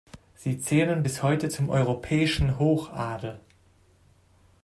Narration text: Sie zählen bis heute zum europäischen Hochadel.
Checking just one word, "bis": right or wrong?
right